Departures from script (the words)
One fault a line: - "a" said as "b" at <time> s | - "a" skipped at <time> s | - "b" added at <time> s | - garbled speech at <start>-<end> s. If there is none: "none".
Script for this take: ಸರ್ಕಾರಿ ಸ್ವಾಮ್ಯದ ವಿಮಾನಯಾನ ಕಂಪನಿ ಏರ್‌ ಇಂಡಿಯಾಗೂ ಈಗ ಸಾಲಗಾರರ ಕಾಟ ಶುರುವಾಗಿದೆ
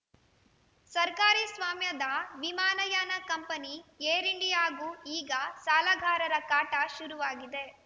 none